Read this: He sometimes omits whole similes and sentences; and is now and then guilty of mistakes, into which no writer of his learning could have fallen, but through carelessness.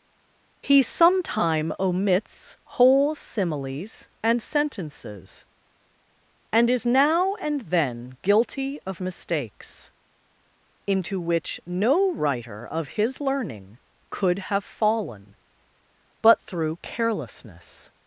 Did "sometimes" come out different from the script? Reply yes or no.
yes